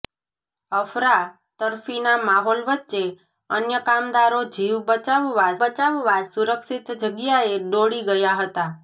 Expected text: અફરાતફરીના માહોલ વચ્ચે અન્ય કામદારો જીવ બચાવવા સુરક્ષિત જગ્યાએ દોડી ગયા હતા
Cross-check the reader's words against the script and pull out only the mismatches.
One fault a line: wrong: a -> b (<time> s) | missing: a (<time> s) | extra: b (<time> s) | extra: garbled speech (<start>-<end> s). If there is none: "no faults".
extra: બચાવવા (5.6 s)